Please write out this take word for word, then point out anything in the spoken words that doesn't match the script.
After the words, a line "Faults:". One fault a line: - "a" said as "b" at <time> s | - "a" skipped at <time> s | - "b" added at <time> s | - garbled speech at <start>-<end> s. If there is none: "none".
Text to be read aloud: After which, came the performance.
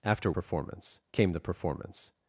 After performance, came the performance.
Faults:
- "which" said as "performance" at 0.3 s